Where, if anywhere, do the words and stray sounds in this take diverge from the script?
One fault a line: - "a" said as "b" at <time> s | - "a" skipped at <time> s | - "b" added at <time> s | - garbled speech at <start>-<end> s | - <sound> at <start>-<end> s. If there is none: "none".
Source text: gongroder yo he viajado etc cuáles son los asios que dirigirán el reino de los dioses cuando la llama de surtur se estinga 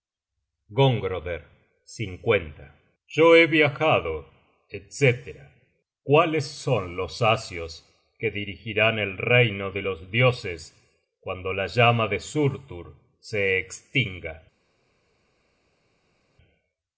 none